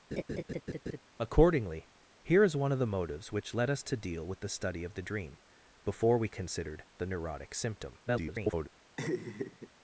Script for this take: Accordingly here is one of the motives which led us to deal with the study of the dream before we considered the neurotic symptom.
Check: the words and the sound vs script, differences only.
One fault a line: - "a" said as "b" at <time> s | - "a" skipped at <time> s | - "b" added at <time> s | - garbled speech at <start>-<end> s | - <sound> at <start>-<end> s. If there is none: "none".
- laugh at 0.1-1.0 s
- garbled speech at 8.1-8.7 s
- laugh at 9.0-9.7 s